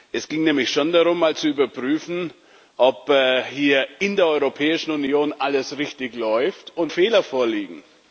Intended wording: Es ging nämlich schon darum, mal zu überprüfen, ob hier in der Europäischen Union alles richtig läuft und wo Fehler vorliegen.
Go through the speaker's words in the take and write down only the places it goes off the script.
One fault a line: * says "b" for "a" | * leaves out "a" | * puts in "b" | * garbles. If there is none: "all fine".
* leaves out "wo"